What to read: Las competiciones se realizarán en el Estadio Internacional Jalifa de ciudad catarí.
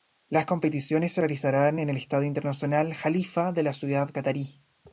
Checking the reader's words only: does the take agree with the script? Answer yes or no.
no